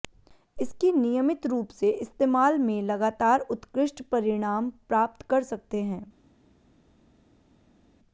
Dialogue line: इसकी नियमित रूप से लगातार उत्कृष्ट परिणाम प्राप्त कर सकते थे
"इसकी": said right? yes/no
yes